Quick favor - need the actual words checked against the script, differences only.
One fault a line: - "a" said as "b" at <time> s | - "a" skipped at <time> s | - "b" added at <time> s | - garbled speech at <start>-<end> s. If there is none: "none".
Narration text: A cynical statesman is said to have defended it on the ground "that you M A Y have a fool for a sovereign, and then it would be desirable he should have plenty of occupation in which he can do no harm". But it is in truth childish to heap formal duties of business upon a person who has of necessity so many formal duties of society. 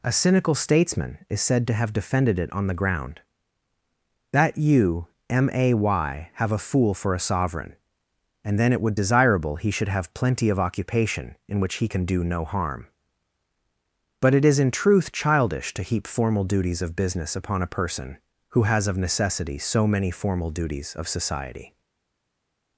- "be" skipped at 8.9 s